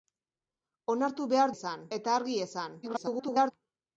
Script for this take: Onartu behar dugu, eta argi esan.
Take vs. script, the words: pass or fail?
fail